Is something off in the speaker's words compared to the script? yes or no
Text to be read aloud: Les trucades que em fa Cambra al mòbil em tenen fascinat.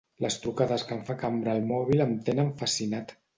no